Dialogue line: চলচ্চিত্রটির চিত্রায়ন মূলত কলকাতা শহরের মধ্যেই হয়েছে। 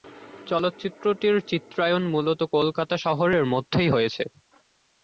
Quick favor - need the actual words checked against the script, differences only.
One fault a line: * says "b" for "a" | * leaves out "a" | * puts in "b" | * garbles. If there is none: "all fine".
all fine